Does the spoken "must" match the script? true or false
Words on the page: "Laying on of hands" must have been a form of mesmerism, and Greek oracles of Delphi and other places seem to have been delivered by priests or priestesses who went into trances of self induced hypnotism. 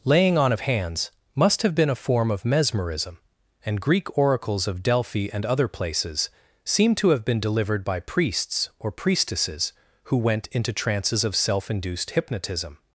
true